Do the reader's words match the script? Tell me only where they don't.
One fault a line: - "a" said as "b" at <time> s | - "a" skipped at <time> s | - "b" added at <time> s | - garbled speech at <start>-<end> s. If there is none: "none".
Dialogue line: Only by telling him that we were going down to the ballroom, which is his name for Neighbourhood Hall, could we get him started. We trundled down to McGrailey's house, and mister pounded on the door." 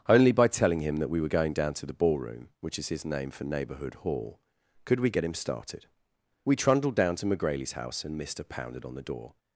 none